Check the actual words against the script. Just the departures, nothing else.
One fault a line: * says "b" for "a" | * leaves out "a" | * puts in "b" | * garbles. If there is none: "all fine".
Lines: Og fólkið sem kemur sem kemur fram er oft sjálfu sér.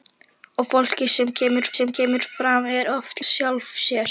all fine